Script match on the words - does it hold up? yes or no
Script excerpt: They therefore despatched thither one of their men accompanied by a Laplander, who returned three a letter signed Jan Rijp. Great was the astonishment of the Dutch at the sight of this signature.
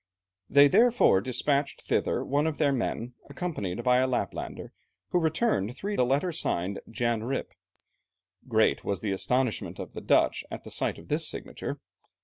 yes